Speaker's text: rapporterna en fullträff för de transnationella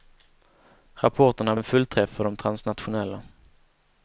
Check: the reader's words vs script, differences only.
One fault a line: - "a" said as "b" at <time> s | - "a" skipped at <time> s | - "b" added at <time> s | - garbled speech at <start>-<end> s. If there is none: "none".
none